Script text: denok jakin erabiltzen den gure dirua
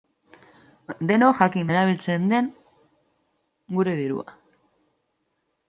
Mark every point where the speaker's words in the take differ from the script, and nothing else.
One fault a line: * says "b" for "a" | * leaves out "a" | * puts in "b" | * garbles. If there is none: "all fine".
all fine